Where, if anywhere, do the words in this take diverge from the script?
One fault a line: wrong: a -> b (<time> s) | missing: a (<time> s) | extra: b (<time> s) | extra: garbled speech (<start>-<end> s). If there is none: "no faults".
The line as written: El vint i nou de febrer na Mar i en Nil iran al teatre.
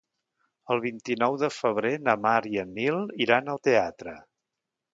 no faults